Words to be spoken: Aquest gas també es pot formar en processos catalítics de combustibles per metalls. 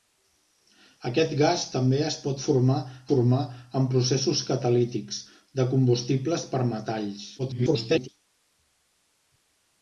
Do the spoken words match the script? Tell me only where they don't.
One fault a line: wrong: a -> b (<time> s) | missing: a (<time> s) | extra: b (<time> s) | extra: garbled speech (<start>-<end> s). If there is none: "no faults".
extra: formar (3.1 s)
extra: garbled speech (7.4-8.1 s)